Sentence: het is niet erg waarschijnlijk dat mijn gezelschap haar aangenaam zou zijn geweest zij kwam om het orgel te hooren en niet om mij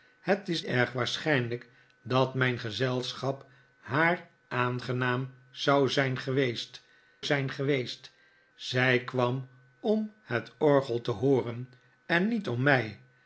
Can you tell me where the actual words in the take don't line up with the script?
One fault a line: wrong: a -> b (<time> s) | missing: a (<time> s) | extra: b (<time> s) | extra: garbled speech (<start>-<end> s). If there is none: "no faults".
missing: niet (0.6 s)
extra: zijn geweest (7.2 s)